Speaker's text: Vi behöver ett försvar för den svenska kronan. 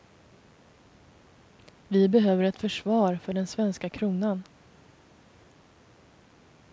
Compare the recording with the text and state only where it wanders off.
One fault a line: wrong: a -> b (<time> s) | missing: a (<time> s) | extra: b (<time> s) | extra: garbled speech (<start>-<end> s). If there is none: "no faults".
no faults